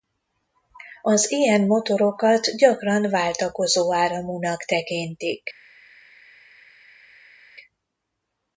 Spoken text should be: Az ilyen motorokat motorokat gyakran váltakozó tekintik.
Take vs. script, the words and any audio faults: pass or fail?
fail